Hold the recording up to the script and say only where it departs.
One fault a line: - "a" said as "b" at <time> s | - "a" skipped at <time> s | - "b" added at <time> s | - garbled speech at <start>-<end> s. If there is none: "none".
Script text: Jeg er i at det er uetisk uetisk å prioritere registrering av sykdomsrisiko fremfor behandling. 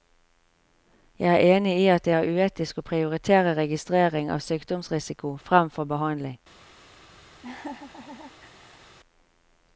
- "enig" added at 1.6 s
- "uetisk" skipped at 2.8 s